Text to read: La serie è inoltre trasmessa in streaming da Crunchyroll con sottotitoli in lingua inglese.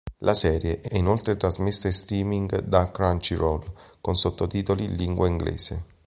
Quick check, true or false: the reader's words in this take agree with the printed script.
false